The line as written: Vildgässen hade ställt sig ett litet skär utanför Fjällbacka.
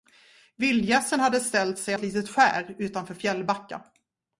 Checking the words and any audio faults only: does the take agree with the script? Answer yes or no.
yes